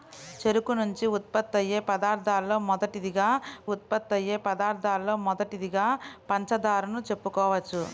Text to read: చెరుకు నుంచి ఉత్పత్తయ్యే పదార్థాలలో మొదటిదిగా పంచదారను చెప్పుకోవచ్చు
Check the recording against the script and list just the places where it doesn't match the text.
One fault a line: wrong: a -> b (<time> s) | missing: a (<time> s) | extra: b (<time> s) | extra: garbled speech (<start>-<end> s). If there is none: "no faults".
extra: ఉత్పత్తయ్యే పదార్థాలలో మొదటిదిగా (3.7 s)